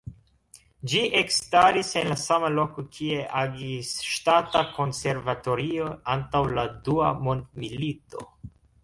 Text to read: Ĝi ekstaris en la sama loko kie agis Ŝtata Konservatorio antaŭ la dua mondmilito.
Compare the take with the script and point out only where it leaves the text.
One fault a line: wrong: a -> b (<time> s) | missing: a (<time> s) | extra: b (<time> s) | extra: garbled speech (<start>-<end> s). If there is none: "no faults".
no faults